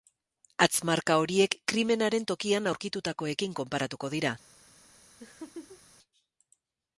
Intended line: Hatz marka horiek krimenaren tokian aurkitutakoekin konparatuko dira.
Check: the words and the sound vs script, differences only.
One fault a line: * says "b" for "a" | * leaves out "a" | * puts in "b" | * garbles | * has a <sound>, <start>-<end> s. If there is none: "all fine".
* has a laugh, 5.2-5.8 s